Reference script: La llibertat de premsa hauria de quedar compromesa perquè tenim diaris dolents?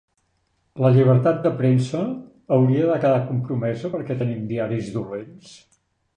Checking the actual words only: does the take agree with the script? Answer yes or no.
yes